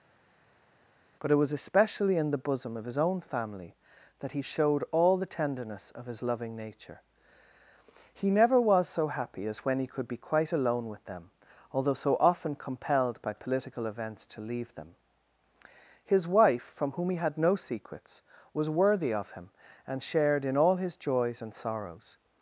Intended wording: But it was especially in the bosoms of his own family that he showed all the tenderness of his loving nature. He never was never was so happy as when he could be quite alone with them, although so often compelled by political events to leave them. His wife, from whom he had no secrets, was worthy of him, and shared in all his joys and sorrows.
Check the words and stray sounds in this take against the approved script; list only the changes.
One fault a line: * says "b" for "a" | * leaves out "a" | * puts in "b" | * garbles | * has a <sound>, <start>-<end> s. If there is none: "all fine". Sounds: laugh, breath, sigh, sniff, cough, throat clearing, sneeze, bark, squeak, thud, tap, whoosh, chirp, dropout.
* says "bosom" for "bosoms"
* leaves out "never was"